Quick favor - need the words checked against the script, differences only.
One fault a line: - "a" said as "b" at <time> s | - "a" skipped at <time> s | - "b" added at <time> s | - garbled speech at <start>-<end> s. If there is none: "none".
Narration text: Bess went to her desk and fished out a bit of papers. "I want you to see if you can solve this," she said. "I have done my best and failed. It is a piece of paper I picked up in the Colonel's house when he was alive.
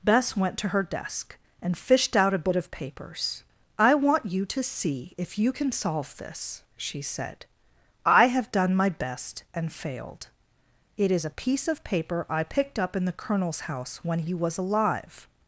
none